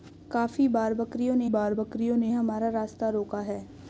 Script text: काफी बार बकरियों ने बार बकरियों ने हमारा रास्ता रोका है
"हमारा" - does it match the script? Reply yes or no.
yes